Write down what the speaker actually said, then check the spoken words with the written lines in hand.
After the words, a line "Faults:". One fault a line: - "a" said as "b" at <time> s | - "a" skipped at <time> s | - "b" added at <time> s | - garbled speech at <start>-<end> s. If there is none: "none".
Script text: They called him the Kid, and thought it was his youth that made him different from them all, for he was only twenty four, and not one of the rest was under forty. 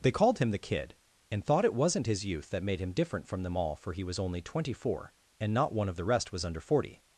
They called him the Kid, and thought it wasn't his youth that made him different from them all, for he was only twenty four, and not one of the rest was under forty.
Faults:
- "was" said as "wasn't" at 1.7 s